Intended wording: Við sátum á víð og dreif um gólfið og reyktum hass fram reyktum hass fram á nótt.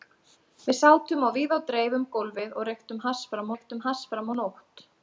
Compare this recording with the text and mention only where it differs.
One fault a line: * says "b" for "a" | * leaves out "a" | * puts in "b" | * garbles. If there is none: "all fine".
all fine